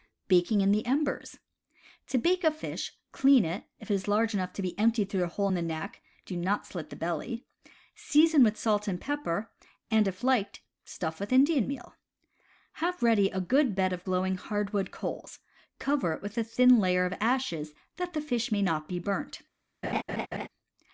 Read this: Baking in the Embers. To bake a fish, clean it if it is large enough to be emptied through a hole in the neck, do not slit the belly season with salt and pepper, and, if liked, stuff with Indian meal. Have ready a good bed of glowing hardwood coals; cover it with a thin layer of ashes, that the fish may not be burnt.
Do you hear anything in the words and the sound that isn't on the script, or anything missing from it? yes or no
yes